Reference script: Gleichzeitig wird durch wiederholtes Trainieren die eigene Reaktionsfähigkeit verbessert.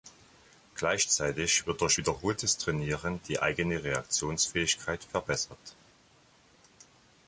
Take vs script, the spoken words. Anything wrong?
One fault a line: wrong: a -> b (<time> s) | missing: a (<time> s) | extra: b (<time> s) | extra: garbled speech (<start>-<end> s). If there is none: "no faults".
no faults